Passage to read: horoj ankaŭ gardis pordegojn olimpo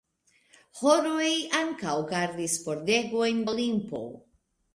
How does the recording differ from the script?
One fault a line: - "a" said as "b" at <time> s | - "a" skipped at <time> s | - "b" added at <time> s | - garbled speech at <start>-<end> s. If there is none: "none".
none